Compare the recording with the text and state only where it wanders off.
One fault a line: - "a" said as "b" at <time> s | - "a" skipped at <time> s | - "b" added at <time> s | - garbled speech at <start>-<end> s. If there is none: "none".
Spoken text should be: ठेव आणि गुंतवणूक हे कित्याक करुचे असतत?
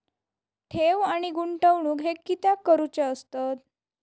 none